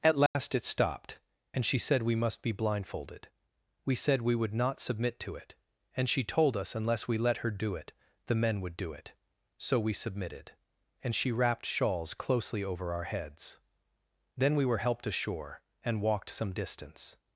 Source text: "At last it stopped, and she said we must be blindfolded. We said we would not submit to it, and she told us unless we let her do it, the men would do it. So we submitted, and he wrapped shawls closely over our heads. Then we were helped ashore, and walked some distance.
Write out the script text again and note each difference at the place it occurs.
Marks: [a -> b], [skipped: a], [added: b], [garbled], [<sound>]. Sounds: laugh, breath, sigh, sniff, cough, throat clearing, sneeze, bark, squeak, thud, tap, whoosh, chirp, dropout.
"At last [dropout] it stopped, and she said we must be blindfolded. We said we would not submit to it, and she told us unless we let her do it, the men would do it. So we submitted, and [he -> she] wrapped shawls closely over our heads. Then we were helped ashore, and walked some distance.